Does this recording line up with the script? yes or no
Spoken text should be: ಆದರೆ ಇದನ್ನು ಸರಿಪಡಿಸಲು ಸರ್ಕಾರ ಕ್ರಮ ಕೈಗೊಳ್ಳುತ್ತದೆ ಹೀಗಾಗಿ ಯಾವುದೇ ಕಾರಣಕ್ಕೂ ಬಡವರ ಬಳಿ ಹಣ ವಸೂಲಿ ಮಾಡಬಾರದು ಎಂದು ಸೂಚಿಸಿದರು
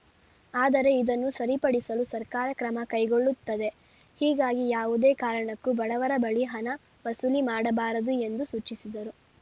yes